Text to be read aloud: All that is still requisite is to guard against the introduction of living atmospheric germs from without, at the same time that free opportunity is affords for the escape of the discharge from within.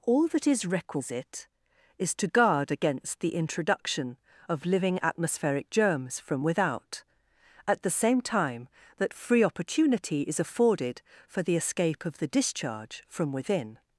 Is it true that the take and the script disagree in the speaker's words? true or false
true